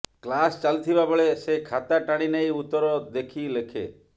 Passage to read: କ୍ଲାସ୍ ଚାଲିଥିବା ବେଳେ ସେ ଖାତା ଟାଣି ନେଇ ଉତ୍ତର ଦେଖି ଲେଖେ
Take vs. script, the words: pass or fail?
pass